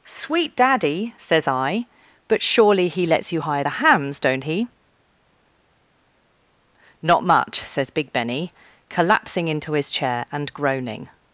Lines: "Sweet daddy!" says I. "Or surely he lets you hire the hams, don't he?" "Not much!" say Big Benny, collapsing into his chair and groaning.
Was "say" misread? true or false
true